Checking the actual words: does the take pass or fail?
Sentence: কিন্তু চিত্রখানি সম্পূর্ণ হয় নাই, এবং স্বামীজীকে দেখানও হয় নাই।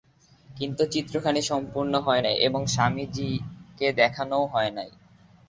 pass